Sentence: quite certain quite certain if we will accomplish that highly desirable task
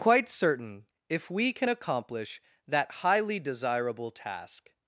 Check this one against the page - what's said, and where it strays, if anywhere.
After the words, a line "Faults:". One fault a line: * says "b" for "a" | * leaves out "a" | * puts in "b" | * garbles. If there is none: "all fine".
quite certain if we can accomplish that highly desirable task
Faults:
* leaves out "quite certain"
* says "can" for "will"